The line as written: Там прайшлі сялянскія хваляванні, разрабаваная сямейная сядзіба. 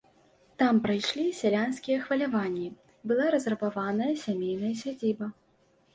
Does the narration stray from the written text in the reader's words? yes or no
yes